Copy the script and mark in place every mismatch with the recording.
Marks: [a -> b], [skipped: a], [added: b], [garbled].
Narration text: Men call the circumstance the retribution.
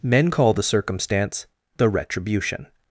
Men call the circumstance the retribution.